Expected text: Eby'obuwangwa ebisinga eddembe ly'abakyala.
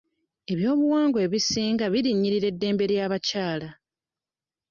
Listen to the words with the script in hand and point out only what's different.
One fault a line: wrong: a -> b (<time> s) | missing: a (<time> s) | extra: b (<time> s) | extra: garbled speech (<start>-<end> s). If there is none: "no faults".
extra: birinnyirira (1.9 s)